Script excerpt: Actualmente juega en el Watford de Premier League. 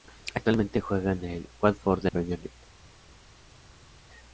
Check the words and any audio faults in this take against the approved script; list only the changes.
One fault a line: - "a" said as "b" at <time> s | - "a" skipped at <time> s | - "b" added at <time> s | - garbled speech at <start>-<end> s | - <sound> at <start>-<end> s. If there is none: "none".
none